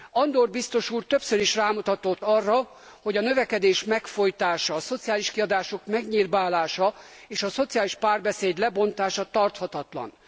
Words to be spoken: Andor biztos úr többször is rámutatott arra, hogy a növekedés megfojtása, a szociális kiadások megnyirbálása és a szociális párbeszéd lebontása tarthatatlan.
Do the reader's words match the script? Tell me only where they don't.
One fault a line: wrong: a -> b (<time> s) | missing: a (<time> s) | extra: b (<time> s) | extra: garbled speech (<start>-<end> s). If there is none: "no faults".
no faults